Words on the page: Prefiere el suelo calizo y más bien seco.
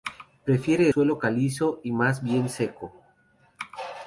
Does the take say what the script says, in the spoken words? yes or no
no